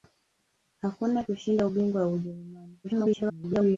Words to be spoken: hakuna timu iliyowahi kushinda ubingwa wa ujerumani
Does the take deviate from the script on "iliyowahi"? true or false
true